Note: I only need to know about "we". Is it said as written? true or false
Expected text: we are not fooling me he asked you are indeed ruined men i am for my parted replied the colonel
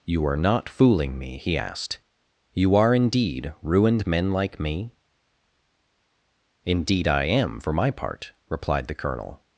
false